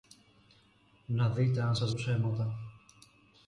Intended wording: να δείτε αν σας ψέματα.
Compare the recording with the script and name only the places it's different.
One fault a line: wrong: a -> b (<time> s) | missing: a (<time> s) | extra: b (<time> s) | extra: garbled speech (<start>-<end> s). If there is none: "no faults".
no faults